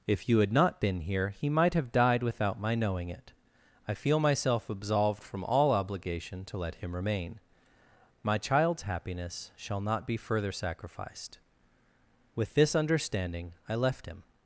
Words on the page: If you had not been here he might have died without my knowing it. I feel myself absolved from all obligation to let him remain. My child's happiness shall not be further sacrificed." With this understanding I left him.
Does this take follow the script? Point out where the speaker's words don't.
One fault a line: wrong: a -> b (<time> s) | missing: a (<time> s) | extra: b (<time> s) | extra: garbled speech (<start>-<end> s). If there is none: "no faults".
no faults